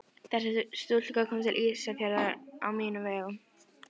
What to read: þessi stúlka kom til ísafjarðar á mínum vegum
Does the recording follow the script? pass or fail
pass